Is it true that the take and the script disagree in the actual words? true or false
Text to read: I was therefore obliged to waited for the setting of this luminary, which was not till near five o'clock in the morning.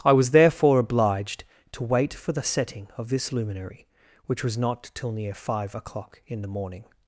true